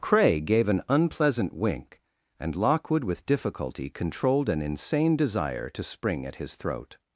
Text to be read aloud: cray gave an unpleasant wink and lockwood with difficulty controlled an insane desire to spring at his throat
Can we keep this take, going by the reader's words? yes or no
yes